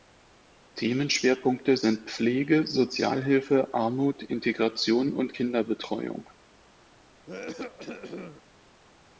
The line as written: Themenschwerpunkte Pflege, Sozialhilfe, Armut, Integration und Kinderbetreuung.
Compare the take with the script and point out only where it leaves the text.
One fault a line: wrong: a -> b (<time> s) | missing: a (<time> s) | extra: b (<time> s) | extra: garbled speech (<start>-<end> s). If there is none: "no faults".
extra: sind (1.7 s)